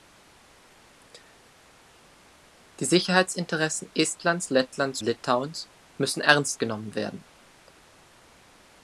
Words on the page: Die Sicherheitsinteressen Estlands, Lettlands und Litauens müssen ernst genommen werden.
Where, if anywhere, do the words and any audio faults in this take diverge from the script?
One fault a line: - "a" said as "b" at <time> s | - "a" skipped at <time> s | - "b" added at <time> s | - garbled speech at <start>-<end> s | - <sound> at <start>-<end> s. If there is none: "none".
- "und" skipped at 5.0 s